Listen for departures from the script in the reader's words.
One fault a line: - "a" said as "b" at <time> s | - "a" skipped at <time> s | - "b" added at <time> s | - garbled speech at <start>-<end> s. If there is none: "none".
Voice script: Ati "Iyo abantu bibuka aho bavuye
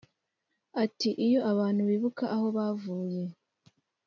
none